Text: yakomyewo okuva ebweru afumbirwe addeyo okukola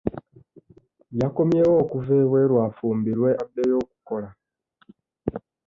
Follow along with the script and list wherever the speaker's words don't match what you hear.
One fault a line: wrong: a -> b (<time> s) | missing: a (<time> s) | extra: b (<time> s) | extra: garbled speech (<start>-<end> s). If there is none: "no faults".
no faults